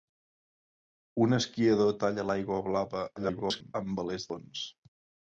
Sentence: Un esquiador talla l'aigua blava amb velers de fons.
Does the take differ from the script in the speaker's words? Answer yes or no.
yes